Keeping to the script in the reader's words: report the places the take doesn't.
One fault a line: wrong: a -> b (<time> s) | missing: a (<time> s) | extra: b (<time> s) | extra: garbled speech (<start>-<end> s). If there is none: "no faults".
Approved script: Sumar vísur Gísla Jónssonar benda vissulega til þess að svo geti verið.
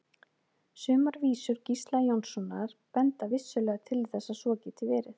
no faults